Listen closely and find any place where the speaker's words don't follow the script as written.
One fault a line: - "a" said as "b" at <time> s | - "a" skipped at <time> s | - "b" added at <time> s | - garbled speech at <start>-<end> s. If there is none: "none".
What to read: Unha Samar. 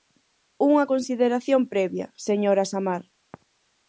- "consideración previa señora" added at 0.9 s